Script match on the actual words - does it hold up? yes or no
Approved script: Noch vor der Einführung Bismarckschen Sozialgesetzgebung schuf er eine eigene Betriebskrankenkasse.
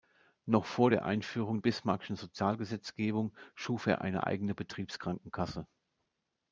yes